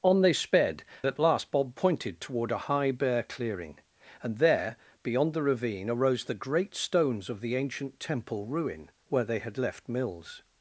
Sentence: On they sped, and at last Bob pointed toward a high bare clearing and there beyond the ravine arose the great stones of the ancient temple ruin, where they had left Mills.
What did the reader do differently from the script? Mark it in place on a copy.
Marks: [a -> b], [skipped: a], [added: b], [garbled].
On they sped, [skipped: and] at last Bob pointed toward a high bare clearing and there beyond the ravine arose the great stones of the ancient temple ruin, where they had left Mills.